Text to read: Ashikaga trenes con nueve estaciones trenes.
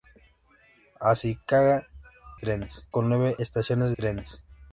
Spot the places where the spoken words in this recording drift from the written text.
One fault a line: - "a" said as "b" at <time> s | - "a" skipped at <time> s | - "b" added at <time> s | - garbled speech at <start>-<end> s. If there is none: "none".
none